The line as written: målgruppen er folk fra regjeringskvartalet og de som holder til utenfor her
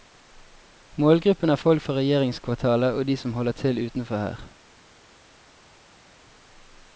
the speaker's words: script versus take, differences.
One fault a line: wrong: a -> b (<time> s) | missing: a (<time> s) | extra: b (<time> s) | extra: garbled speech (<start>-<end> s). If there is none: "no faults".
no faults